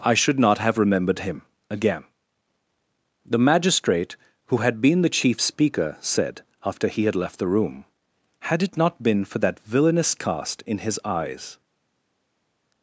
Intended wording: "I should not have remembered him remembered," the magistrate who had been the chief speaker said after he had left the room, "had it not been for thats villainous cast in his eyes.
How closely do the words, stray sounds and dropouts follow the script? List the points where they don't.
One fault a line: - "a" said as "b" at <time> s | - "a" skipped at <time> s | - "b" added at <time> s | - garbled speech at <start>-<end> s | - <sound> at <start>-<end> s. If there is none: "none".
- "remembered" said as "again" at 1.7 s
- "thats" said as "that" at 9.4 s